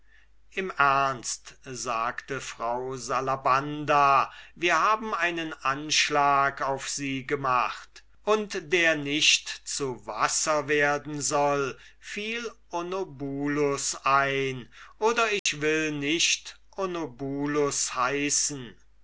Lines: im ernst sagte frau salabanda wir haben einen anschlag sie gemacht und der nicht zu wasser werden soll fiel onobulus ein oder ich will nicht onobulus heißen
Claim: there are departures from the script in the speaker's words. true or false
true